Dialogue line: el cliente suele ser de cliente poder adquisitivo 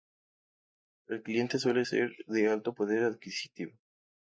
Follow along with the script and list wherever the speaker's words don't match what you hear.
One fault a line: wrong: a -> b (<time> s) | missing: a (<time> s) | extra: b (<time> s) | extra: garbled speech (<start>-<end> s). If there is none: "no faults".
wrong: cliente -> alto (2.5 s)